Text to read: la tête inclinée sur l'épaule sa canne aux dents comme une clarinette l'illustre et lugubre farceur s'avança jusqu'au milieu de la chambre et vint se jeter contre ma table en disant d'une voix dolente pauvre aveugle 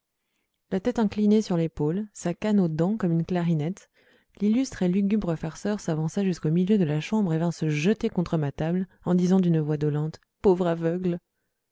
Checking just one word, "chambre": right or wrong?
right